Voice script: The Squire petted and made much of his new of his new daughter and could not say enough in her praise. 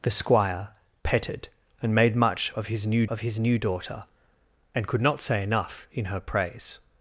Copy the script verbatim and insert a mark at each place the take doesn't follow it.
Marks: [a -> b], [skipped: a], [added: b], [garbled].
The Squire petted and made much of his new of his new daughter and could not say enough in her praise.